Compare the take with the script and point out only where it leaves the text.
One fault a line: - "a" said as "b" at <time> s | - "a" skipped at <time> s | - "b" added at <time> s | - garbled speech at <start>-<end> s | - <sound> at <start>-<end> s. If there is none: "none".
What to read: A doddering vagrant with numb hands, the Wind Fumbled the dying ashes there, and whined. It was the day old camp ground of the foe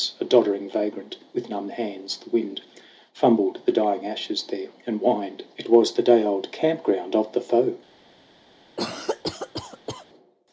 - cough at 8.8-10.1 s